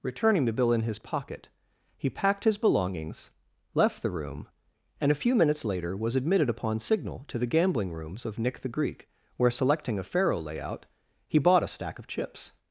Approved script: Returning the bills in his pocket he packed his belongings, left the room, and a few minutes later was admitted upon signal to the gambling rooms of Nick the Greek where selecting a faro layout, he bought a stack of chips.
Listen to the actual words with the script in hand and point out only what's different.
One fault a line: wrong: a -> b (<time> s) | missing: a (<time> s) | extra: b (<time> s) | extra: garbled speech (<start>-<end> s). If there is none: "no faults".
wrong: bills -> bill (0.5 s)